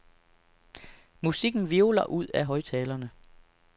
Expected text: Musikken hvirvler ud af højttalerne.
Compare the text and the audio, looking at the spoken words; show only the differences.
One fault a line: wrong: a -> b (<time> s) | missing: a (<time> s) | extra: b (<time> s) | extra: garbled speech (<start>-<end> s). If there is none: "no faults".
no faults